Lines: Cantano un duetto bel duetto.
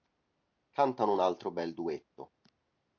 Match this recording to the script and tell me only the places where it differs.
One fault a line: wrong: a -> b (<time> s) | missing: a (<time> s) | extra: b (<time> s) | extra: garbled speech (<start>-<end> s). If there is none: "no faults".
wrong: duetto -> altro (1.2 s)